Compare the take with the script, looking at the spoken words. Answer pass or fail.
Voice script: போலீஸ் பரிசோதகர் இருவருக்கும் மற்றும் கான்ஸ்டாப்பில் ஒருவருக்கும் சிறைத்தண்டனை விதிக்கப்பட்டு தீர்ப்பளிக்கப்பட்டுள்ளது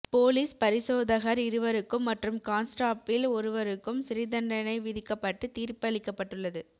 pass